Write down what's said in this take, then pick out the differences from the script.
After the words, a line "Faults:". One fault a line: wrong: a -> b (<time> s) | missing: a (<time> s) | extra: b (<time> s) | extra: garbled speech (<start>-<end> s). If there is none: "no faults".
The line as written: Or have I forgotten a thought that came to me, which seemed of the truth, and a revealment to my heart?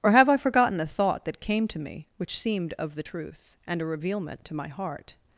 Or have I forgotten a thought that came to me, which seemed of the truth, and a revealment to my heart?
Faults:
no faults